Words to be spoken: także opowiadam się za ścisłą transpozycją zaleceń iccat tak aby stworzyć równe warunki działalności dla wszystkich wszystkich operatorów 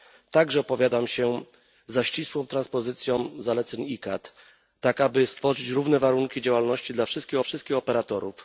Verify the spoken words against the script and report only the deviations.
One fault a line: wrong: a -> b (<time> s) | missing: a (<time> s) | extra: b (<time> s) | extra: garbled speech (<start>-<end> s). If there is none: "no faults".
no faults